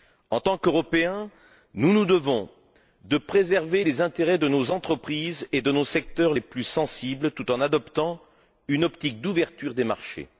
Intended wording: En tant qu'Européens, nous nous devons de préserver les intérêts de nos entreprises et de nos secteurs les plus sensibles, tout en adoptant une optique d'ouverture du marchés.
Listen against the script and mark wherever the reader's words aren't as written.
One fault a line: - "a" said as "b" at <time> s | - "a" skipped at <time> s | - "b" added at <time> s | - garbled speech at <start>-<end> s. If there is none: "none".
- "du" said as "des" at 9.7 s